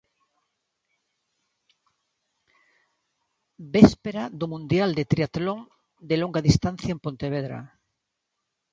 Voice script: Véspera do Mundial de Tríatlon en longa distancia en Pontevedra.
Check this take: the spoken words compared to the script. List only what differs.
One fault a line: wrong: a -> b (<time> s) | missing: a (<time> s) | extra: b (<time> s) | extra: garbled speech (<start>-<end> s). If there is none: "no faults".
wrong: en -> de (6.0 s)